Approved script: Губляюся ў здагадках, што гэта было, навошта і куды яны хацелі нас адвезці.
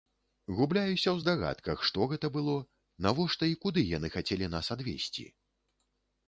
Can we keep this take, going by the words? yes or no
yes